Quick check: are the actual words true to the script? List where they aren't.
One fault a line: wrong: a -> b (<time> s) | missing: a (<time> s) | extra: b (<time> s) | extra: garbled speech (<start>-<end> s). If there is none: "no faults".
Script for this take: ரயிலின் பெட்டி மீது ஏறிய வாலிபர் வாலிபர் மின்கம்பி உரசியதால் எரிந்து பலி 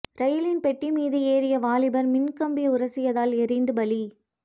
missing: வாலிபர் (2.1 s)